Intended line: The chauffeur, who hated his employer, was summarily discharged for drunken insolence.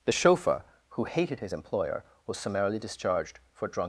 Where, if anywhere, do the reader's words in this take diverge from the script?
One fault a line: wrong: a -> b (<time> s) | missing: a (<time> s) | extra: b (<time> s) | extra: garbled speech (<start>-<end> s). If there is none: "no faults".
wrong: drunken insolence -> drunk (3.7 s)